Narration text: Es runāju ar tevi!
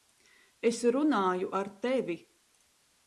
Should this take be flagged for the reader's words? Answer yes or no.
no